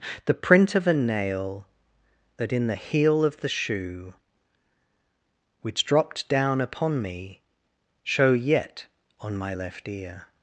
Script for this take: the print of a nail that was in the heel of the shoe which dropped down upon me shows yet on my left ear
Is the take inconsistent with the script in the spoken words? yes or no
yes